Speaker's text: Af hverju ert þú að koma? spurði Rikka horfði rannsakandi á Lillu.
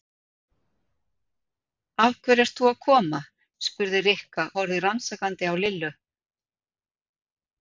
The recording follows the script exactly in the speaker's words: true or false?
true